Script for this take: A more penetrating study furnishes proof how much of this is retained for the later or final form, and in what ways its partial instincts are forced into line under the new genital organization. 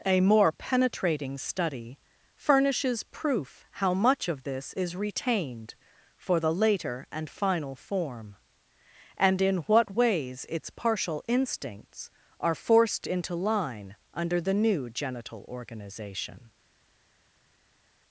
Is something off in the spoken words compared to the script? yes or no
yes